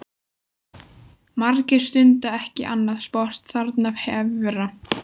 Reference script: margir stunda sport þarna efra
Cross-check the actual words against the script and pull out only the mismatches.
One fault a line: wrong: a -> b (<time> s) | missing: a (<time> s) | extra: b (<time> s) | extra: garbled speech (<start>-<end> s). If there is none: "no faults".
extra: ekki annað (2.4 s)